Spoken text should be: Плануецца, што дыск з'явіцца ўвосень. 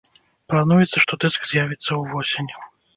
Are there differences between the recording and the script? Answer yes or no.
no